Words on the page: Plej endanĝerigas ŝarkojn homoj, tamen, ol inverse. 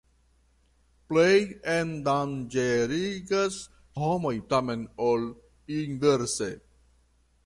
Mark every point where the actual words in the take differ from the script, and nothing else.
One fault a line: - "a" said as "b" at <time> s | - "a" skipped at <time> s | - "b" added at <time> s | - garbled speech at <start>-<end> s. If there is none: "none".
- "ŝarkojn" skipped at 3.6 s